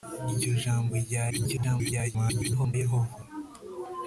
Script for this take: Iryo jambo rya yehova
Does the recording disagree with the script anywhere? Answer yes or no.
yes